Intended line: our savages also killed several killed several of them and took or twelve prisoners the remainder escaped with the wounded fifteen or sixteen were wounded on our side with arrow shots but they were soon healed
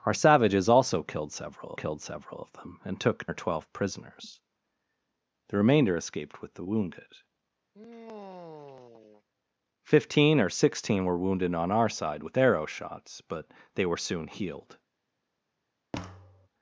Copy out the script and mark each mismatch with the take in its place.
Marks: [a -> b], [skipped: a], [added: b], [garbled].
our savages also killed several killed several of them and took or twelve prisoners the remainder escaped with the wounded fifteen or sixteen were wounded on our side with arrow shots but they were soon healed